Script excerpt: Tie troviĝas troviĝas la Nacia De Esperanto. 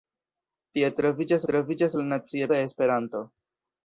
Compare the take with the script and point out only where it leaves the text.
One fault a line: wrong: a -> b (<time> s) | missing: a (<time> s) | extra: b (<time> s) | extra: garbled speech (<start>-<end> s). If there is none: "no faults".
no faults